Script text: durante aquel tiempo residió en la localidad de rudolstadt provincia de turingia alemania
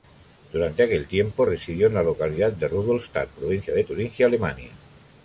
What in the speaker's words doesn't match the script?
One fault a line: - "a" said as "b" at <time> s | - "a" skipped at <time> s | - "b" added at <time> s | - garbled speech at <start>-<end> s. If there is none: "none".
none